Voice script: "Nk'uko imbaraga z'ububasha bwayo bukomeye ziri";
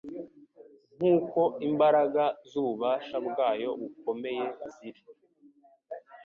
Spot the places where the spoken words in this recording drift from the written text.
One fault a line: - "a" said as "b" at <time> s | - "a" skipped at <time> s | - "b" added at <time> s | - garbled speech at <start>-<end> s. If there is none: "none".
none